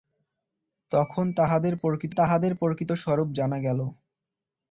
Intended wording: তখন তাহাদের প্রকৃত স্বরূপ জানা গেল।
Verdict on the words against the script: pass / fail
fail